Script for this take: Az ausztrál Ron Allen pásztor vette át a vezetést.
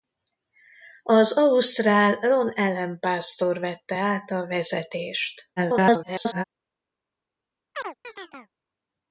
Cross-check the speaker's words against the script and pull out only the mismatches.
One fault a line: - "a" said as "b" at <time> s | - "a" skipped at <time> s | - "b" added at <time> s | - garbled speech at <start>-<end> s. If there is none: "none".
- garbled speech at 5.6-6.4 s